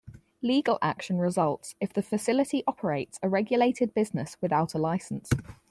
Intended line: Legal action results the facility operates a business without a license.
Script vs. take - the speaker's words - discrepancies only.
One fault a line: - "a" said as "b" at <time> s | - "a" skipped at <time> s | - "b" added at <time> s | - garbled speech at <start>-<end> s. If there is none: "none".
- "if" added at 1.8 s
- "regulated" added at 3.3 s